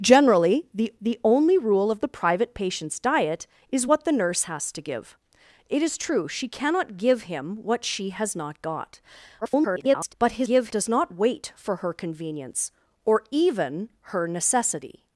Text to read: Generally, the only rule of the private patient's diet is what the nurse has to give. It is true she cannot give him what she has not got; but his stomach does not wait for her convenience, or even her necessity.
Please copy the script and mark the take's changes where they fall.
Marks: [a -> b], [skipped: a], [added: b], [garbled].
Generally, the [added: the] only rule of the private patient's diet is what the nurse has to give. It is true she cannot give him what she has not got; [garbled] but his [stomach -> give] does not wait for her convenience, or even her necessity.